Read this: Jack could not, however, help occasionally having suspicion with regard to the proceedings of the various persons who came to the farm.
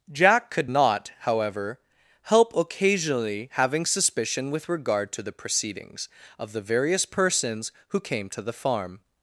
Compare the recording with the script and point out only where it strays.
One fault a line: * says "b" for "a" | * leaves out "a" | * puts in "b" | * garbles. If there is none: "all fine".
all fine